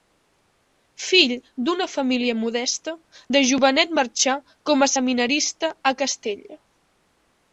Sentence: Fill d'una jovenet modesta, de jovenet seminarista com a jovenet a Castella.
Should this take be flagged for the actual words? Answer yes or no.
yes